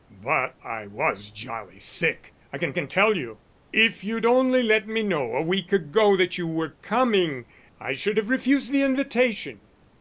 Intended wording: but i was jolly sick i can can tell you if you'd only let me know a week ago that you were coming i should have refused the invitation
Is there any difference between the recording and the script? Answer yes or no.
no